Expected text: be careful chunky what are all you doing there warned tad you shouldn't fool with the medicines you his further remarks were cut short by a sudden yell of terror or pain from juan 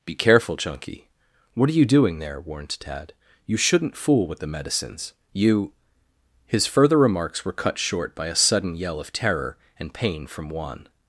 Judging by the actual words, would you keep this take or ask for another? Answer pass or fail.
fail